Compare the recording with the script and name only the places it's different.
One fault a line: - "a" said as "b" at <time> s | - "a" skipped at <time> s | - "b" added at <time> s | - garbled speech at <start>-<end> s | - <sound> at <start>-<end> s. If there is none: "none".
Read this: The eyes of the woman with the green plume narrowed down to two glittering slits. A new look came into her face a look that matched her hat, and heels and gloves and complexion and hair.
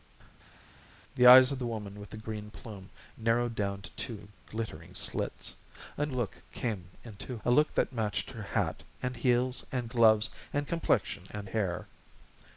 - "new" skipped at 6.1 s
- "her face" skipped at 7.4 s